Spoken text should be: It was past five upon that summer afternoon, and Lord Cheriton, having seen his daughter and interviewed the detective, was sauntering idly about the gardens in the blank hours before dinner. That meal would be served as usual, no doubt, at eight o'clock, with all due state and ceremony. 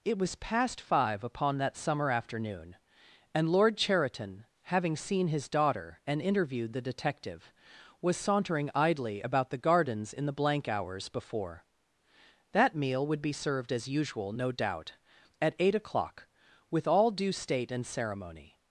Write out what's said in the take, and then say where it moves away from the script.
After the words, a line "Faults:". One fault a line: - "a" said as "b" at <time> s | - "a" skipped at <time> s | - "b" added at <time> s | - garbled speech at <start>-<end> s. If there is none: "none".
It was past five upon that summer afternoon, and Lord Cheriton, having seen his daughter and interviewed the detective, was sauntering idly about the gardens in the blank hours before. That meal would be served as usual, no doubt, at eight o'clock, with all due state and ceremony.
Faults:
- "dinner" skipped at 11.7 s